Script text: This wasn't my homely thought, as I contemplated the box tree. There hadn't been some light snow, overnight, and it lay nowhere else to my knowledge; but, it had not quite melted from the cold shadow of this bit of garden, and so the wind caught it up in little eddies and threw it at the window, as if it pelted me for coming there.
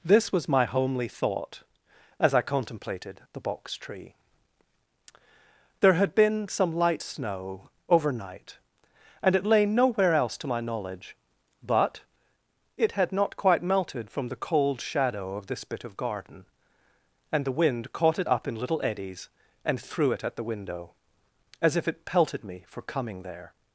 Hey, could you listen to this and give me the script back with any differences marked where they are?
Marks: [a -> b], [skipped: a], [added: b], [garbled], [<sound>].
This [wasn't -> was] my homely thought, as I contemplated the box tree. There [hadn't -> had] been some light snow, overnight, and it lay nowhere else to my knowledge; but, it had not quite melted from the cold shadow of this bit of garden, and [skipped: so] the wind caught it up in little eddies and threw it at the window, as if it pelted me for coming there.